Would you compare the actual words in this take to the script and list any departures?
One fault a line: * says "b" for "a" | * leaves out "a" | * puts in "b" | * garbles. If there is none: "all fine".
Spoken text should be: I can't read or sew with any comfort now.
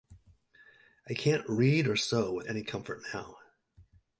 all fine